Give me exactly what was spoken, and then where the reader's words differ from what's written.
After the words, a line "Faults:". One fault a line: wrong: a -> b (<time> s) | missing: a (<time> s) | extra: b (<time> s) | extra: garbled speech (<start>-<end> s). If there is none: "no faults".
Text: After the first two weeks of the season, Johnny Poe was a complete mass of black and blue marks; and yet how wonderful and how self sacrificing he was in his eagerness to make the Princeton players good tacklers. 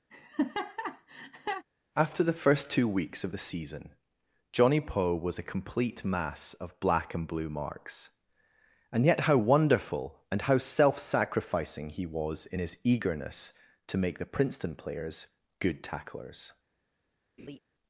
After the first two weeks of the season, Johnny Poe was a complete mass of black and blue marks; and yet how wonderful and how self sacrificing he was in his eagerness to make the Princeton players good tacklers.
Faults:
no faults